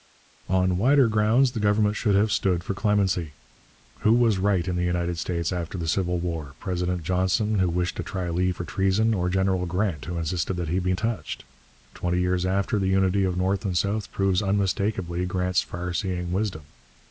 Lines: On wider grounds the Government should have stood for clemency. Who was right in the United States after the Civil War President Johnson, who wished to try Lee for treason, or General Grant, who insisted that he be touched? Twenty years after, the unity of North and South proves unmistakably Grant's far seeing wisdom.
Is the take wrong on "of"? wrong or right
right